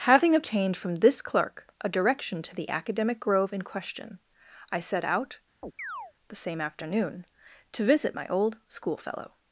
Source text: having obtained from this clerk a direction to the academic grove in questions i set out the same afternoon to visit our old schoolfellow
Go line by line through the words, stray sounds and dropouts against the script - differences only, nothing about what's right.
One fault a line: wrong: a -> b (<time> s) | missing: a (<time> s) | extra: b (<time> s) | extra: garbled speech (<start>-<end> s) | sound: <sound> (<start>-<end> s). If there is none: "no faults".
wrong: questions -> question (3.6 s)
sound: chirp (5.6-6.1 s)
wrong: our -> my (8.1 s)